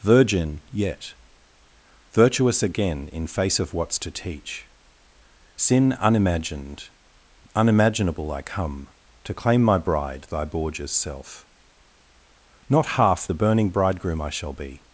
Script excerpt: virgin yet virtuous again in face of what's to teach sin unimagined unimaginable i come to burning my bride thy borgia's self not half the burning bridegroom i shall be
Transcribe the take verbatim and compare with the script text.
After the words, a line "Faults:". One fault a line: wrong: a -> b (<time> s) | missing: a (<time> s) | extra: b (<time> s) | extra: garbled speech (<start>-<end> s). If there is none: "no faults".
virgin yet virtuous again in face of what's to teach sin unimagined unimaginable i come to claim my bride thy borgia's self not half the burning bridegroom i shall be
Faults:
wrong: burning -> claim (9.3 s)